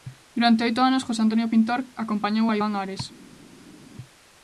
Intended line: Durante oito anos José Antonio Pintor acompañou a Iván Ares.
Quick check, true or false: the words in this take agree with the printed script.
true